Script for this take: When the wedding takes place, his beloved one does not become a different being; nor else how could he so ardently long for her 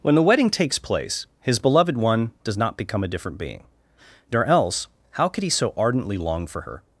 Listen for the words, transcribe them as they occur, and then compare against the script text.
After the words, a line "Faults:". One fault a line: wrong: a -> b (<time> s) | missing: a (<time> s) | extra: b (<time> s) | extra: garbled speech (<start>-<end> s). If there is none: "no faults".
When the wedding takes place, his beloved one does not become a different being; nor else how could he so ardently long for her
Faults:
no faults